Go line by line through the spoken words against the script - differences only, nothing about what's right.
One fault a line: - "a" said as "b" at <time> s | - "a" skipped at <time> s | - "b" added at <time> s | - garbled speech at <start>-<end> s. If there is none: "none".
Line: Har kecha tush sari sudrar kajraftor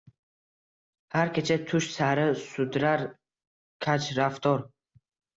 none